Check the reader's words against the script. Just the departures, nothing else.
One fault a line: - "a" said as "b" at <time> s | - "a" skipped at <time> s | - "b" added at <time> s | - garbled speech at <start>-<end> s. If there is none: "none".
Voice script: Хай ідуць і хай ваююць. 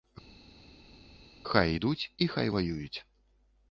none